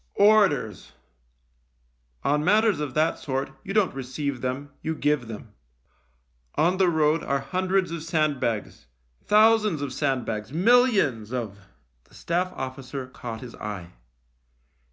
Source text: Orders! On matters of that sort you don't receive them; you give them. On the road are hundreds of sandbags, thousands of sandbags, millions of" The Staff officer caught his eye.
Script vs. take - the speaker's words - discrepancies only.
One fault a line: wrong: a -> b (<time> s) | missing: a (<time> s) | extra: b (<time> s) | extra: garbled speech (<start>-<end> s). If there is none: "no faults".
no faults